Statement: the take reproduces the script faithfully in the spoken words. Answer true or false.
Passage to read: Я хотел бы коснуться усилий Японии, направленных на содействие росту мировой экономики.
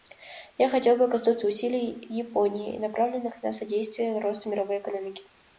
true